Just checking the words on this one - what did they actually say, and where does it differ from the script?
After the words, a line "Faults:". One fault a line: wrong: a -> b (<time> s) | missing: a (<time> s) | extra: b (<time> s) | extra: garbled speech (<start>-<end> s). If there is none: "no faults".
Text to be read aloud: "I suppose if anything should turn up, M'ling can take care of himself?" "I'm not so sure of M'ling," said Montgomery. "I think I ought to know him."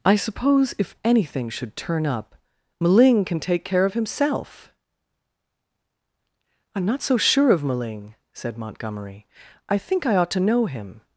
"I suppose if anything should turn up, M'ling can take care of himself?" "I'm not so sure of M'ling," said Montgomery. "I think I ought to know him."
Faults:
no faults